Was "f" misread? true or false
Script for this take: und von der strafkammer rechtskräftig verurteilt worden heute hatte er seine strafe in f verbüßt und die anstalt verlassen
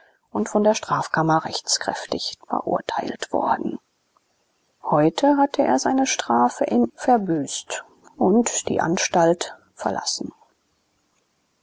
true